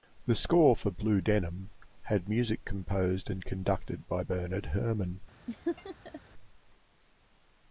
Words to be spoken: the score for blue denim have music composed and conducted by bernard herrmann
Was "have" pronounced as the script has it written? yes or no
no